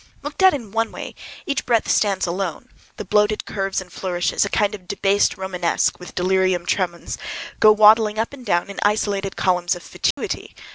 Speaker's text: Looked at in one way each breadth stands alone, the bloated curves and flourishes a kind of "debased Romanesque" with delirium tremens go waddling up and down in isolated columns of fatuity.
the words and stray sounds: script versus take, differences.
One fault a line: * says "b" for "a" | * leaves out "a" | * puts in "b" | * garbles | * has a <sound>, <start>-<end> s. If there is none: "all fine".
* has a dropout, 10.1-10.2 s